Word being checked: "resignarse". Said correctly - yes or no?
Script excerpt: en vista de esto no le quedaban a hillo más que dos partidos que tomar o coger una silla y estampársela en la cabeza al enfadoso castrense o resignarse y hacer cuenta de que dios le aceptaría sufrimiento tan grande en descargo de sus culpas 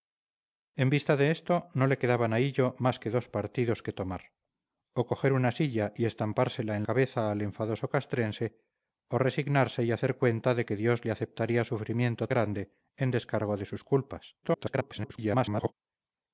yes